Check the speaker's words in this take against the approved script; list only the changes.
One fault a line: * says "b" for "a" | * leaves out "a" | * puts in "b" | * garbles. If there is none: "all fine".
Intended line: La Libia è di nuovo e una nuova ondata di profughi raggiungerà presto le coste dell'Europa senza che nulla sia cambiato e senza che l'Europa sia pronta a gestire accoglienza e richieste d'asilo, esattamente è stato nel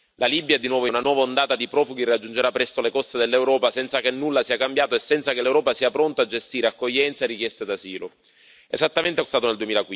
all fine